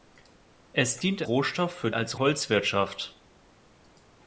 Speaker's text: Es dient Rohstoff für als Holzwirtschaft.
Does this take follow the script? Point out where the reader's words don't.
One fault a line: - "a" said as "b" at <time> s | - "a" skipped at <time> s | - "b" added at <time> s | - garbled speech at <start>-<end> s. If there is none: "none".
none